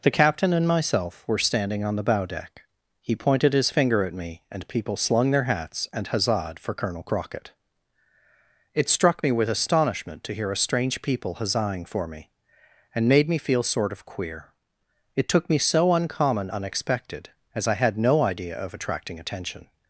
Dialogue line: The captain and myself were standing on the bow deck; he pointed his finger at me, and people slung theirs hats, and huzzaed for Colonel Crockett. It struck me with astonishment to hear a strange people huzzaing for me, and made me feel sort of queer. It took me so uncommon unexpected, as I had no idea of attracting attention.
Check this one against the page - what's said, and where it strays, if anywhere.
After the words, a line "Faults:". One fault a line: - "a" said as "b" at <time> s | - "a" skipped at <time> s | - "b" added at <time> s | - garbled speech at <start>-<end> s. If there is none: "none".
The captain and myself were standing on the bow deck; he pointed his finger at me, and people slung their hats, and huzzaed for Colonel Crockett. It struck me with astonishment to hear a strange people huzzaing for me, and made me feel sort of queer. It took me so uncommon unexpected, as I had no idea of attracting attention.
Faults:
- "theirs" said as "their" at 5.3 s